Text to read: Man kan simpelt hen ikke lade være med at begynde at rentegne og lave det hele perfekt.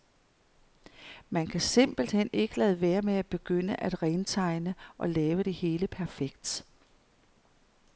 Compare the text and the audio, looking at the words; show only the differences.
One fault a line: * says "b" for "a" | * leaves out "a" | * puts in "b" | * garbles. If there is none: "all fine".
all fine